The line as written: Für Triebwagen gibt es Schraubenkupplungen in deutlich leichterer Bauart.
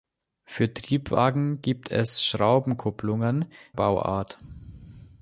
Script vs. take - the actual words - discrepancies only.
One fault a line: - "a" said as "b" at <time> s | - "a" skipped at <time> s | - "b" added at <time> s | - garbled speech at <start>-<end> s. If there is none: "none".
- "in deutlich leichterer" skipped at 3.5 s